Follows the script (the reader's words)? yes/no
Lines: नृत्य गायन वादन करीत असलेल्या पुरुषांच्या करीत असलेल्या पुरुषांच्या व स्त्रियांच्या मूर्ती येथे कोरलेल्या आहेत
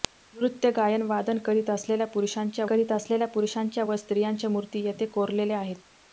yes